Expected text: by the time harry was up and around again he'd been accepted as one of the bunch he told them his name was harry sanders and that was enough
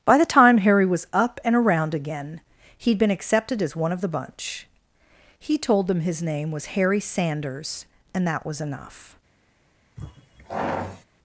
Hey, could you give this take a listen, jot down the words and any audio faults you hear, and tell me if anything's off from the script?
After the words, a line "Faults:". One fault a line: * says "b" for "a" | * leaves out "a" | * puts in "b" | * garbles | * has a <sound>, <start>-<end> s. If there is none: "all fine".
by the time harry was up and around again he'd been accepted as one of the bunch he told them his name was harry sanders and that was enough
Faults:
* has a sigh, 10.0-11.0 s